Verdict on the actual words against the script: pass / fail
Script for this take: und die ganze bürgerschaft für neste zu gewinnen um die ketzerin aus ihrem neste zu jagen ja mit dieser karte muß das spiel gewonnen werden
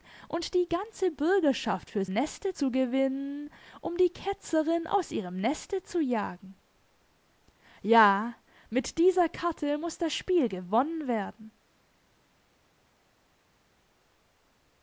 pass